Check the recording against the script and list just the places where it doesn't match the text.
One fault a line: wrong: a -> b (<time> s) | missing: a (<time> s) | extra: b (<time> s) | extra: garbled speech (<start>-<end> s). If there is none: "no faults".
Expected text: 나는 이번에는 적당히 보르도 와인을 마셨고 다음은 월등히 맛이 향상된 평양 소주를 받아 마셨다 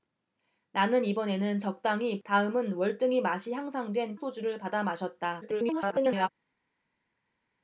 missing: 보르도 와인을 마셨고 (2.2 s)
missing: 평양 (4.2 s)
extra: garbled speech (5.4-6.3 s)